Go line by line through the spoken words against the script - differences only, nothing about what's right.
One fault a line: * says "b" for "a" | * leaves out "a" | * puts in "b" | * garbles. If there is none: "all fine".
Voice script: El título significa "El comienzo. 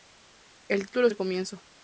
* leaves out "significa"